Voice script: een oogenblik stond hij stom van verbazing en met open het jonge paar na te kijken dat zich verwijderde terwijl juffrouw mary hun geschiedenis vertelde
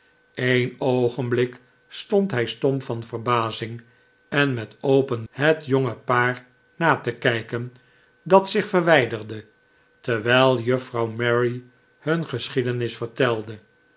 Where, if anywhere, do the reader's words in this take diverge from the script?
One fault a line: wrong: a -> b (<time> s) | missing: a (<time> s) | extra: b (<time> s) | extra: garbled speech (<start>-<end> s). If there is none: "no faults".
no faults